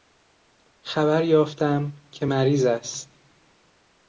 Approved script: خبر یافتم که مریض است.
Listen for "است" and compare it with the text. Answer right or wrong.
right